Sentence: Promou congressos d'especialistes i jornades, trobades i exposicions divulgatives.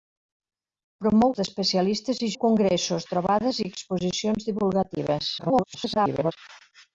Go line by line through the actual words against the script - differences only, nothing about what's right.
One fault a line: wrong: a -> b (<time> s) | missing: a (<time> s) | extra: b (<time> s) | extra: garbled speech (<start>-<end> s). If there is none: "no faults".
missing: congressos (1.3 s)
wrong: jornades -> congressos (2.4 s)
extra: garbled speech (5.4-6.3 s)